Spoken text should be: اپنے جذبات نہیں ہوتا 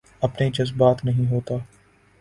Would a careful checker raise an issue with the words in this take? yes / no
no